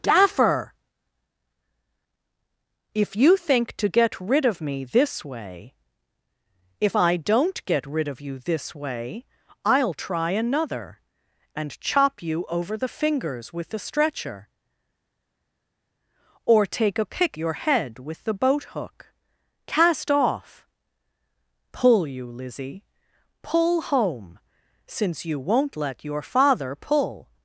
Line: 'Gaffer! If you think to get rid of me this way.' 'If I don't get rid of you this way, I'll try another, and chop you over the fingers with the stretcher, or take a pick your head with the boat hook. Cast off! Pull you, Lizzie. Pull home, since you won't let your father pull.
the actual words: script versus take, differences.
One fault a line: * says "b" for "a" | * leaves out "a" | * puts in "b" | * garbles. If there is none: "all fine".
all fine